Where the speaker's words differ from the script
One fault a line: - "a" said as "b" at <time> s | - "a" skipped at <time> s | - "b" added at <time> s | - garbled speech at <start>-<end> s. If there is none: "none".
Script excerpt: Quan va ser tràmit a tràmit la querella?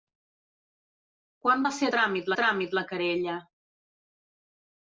none